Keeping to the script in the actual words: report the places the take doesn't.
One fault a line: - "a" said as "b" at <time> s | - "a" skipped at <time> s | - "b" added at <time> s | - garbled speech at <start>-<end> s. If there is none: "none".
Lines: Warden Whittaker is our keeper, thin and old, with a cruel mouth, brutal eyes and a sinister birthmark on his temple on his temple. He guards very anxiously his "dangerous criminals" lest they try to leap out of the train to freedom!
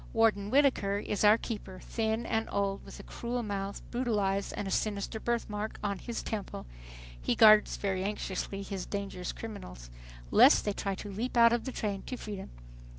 - "on his temple" skipped at 6.7 s